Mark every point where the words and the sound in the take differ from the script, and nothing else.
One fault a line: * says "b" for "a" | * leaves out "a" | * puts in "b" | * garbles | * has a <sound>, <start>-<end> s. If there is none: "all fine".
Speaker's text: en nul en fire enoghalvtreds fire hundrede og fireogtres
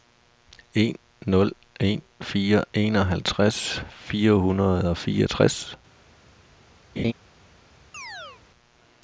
* has a laugh, 7.0-7.1 s
* has a chirp, 7.9-8.4 s